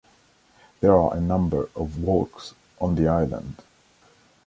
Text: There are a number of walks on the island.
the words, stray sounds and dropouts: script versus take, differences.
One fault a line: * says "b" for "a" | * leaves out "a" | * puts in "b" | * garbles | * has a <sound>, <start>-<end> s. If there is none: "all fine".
all fine